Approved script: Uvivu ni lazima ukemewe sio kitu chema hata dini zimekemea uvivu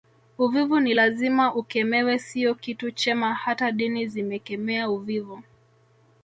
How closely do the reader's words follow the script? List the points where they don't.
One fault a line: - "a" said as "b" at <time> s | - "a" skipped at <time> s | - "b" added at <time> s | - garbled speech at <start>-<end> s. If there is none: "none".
none